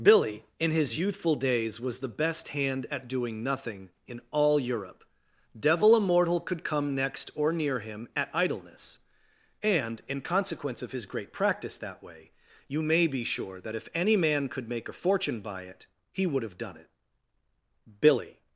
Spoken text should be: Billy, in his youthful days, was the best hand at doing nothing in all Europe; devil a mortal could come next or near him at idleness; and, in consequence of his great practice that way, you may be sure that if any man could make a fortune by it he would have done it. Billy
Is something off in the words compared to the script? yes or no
no